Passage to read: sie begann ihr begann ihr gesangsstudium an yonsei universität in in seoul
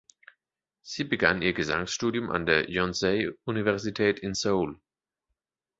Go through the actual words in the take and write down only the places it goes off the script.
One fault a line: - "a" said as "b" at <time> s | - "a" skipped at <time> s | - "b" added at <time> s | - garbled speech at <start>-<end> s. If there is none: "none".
- "begann ihr" skipped at 1.5 s
- "der" added at 2.5 s
- "in" skipped at 4.3 s